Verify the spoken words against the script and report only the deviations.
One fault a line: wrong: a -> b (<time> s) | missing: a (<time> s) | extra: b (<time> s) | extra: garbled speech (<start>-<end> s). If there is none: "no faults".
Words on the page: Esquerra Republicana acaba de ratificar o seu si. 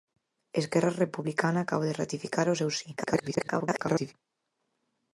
extra: garbled speech (3.0-4.1 s)